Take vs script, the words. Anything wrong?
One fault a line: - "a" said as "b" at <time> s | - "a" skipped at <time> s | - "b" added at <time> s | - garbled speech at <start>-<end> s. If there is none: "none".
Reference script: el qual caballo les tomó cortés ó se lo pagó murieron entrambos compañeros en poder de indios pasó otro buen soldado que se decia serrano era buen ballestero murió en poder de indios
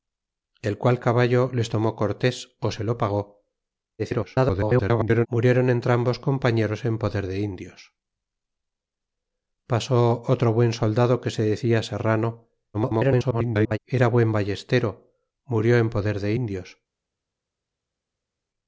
- garbled speech at 4.0-5.3 s
- garbled speech at 12.7-13.8 s